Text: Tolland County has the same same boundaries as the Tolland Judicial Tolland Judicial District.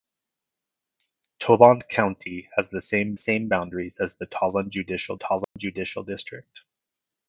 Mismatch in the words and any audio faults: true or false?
true